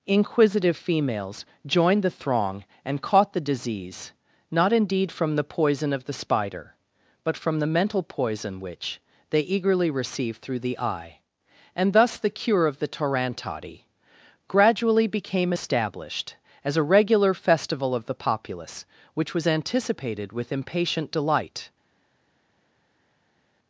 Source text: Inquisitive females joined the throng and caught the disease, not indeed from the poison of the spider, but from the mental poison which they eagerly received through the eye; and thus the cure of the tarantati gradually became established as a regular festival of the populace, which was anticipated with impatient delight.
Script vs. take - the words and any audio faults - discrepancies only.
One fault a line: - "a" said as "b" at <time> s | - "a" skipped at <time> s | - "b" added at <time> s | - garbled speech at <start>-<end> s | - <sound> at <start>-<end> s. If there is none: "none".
none